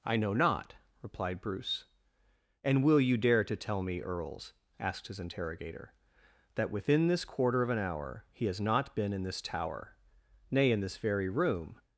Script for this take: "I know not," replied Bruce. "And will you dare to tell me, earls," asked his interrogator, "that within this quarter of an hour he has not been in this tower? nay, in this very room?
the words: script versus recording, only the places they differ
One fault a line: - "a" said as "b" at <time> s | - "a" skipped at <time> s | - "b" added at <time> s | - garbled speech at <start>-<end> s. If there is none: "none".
none